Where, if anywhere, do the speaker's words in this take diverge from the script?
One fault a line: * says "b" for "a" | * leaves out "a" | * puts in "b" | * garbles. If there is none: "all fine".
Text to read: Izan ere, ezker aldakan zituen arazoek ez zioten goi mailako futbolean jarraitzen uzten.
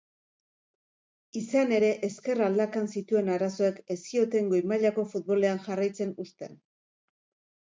all fine